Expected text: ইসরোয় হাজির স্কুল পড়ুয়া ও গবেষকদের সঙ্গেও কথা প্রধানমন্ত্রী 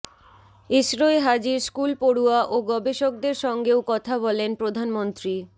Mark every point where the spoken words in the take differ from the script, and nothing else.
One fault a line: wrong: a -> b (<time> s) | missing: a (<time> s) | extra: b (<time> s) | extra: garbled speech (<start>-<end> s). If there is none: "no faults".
extra: বলেন (4.3 s)